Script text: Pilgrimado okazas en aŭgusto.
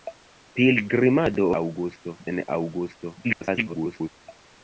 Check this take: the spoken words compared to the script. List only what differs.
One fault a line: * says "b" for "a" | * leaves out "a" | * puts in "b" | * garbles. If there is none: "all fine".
* says "aŭgusto" for "okazas"
* garbles